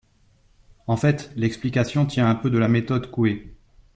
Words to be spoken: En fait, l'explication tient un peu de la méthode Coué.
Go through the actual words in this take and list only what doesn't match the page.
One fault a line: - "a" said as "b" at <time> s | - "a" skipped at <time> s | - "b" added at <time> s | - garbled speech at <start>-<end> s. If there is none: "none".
none